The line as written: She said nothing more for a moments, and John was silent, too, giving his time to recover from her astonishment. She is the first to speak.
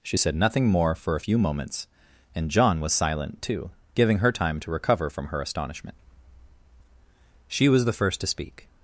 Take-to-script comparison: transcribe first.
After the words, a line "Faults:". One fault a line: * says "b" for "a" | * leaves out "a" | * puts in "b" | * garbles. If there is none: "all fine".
She said nothing more for a few moments, and John was silent, too, giving her time to recover from her astonishment. She was the first to speak.
Faults:
* puts in "few"
* says "her" for "his"
* says "was" for "is"